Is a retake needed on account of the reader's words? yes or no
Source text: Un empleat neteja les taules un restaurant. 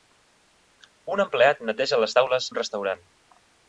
no